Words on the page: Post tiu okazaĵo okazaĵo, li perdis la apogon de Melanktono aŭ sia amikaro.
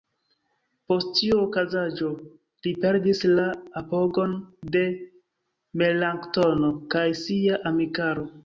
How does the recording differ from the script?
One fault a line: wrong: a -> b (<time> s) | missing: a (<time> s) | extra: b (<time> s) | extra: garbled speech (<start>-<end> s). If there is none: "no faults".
missing: okazaĵo (2.1 s)
wrong: aŭ -> kaj (7.0 s)